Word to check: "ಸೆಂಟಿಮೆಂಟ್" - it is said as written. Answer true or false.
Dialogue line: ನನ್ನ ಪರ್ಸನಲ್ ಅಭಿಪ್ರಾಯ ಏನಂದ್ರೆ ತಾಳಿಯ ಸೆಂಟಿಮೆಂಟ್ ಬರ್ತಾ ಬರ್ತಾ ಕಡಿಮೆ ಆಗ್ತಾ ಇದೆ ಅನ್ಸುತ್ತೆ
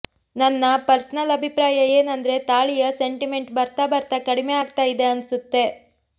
true